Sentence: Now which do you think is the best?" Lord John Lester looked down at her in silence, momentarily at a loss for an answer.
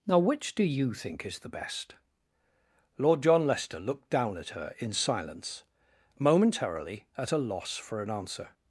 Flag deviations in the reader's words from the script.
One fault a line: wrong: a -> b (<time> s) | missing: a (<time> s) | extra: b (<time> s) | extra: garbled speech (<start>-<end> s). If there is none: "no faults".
no faults